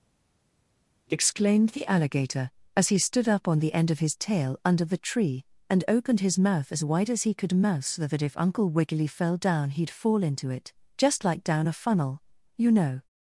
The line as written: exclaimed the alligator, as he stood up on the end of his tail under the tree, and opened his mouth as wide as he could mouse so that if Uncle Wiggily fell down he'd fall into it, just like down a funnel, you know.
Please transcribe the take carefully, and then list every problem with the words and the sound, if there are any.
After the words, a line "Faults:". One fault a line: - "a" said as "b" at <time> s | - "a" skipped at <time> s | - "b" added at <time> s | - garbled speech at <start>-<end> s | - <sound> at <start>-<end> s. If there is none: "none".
exclaimed the alligator, as he stood up on the end of his tail under the tree, and opened his mouth as wide as he could mouse so that if Uncle Wiggily fell down he'd fall into it, just like down a funnel, you know.
Faults:
none